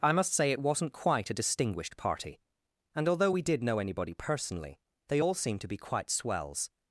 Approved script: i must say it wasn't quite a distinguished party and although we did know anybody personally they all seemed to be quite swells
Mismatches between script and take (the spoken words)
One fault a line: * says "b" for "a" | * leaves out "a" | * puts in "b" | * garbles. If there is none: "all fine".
all fine